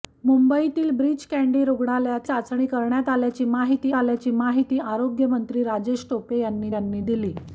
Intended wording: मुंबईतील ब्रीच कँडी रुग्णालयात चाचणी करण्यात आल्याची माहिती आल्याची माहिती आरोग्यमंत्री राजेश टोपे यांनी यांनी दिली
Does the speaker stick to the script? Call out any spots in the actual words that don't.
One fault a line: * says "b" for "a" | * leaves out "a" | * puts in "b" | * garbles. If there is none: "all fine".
all fine